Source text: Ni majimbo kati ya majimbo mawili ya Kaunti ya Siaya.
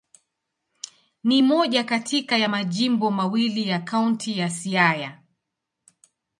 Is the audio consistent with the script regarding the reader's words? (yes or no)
no